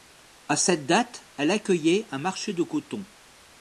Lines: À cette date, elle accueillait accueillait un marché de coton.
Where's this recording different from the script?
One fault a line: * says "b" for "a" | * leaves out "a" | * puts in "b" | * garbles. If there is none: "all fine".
* leaves out "accueillait"